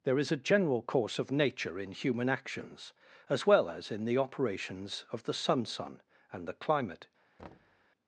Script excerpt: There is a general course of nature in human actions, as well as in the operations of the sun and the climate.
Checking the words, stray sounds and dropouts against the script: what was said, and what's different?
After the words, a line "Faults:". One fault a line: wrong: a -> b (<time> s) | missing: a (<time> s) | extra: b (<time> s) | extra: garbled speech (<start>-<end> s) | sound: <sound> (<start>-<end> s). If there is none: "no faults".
There is a general course of nature in human actions, as well as in the operations of the sun sun and the climate.
Faults:
extra: sun (5.6 s)
sound: thud (7.4-7.9 s)